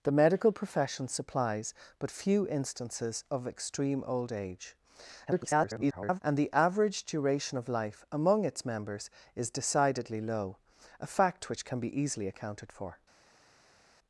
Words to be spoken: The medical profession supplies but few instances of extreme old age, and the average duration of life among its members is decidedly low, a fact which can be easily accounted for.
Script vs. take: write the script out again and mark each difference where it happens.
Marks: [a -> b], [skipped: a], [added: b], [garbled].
The medical profession supplies but few instances of extreme old age, [garbled] and the average duration of life among its members is decidedly low, a fact which can be easily accounted for.